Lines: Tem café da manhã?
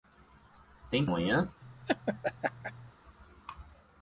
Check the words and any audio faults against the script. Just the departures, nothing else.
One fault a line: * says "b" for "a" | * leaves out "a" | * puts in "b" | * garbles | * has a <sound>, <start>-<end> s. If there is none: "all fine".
* leaves out "café da"
* has a laugh, 1.6-2.9 s